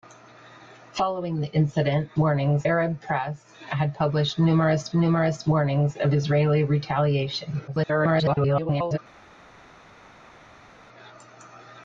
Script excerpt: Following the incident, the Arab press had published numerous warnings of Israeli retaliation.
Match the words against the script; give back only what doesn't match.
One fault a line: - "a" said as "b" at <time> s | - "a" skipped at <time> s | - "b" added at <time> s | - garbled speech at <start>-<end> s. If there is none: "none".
- "the" said as "warnings" at 2.2 s
- "numerous" added at 4.9 s
- garbled speech at 7.7-9.0 s